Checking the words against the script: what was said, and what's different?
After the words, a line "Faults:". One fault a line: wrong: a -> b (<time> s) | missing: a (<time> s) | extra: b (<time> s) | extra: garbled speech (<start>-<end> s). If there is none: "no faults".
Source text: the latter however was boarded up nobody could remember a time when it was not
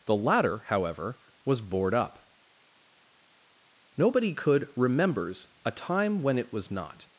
the latter however was board up nobody could remembers a time when it was not
Faults:
wrong: boarded -> board (1.6 s)
wrong: remember -> remembers (4.8 s)